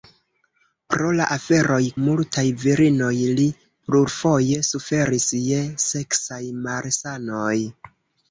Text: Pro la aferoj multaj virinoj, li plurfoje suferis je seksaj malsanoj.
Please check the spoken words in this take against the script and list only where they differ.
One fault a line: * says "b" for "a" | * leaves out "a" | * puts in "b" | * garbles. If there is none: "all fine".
all fine